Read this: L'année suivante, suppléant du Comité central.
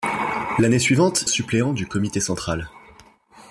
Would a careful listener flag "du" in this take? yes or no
no